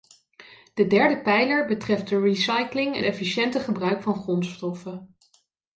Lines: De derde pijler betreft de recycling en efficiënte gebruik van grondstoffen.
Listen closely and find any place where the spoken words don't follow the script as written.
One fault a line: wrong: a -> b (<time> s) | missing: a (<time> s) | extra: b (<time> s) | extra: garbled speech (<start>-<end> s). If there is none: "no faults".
no faults